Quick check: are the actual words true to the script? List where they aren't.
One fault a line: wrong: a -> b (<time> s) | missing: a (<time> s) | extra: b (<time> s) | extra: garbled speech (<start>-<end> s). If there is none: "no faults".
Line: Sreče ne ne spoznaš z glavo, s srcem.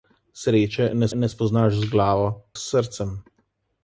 no faults